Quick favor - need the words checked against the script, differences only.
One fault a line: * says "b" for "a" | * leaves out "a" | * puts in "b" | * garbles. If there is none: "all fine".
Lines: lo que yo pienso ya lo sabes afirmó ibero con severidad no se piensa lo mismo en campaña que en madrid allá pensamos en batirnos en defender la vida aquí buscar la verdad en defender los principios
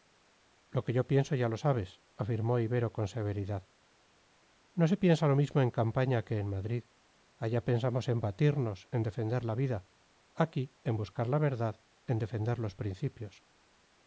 * puts in "en"